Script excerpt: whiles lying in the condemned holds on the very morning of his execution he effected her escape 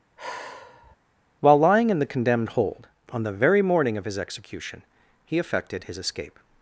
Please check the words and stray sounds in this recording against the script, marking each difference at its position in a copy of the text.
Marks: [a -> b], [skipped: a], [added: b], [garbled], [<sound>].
[sigh] [whiles -> while] lying in the condemned [holds -> hold] on the very morning of his execution he effected [her -> his] escape